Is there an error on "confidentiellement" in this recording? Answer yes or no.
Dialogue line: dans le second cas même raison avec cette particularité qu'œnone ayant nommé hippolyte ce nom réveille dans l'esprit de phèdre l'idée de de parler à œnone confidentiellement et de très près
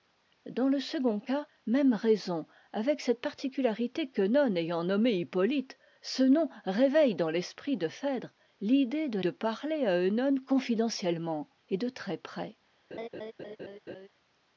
no